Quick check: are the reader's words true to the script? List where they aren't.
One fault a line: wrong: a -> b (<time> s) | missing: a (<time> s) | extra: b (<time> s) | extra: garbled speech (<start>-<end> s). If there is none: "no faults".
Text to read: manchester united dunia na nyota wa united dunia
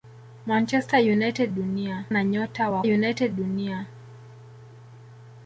no faults